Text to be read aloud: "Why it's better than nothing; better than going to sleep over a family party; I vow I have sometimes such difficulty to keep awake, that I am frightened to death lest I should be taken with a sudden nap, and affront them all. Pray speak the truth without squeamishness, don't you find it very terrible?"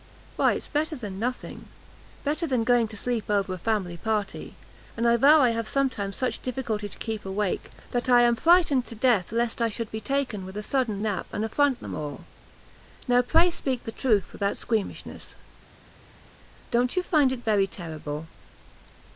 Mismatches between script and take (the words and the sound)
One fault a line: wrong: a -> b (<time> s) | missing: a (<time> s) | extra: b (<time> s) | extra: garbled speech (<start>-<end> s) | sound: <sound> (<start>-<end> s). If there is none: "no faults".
extra: and (5.0 s)
extra: Now (13.1 s)